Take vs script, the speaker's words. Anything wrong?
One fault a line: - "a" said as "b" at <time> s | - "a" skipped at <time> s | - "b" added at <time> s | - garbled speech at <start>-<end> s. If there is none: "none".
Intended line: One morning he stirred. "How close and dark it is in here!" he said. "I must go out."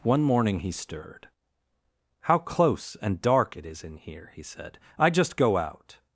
- "must" said as "just" at 5.1 s